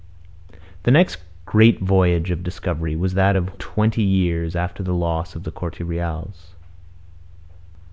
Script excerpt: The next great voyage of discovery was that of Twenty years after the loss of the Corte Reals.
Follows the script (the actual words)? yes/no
yes